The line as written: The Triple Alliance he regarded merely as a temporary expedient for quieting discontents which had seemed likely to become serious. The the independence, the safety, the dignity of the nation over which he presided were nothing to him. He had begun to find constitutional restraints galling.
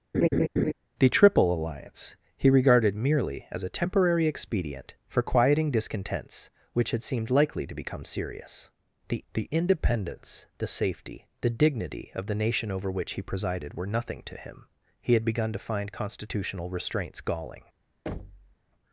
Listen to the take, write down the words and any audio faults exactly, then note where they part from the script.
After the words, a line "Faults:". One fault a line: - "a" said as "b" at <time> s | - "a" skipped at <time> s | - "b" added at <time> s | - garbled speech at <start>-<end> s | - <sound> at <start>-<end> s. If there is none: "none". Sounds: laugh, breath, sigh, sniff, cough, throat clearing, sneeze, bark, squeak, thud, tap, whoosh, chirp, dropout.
The Triple Alliance he regarded merely as a temporary expedient for quieting discontents which had seemed likely to become serious. The the independence, the safety, the dignity of the nation over which he presided were nothing to him. He had begun to find constitutional restraints galling.
Faults:
- laugh at 0.1-0.7 s
- thud at 18.1-18.6 s